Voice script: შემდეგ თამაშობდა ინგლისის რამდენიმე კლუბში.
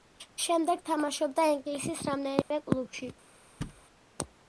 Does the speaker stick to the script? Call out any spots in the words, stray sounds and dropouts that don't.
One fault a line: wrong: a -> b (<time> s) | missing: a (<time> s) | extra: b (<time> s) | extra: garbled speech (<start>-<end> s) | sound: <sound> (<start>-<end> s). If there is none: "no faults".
sound: dropout (2.4-2.5 s)
sound: thud (3.6-3.8 s)